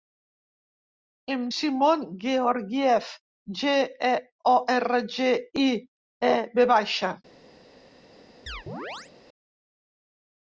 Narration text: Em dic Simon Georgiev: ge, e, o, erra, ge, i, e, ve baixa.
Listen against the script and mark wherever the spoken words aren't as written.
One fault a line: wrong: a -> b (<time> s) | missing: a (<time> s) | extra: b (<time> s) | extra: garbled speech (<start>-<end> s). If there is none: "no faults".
missing: dic (1.4 s)